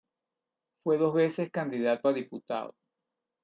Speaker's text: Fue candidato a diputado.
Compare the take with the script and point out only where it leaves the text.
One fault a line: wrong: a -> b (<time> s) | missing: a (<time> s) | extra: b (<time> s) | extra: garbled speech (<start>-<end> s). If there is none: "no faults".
extra: dos veces (1.0 s)